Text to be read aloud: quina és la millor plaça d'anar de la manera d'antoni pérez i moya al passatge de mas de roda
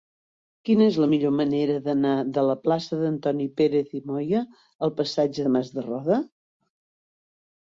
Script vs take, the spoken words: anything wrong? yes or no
yes